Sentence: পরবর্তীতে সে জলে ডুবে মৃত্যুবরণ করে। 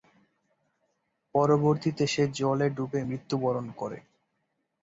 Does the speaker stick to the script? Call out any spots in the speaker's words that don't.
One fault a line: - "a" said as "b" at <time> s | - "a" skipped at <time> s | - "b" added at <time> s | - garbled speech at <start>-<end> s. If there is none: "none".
none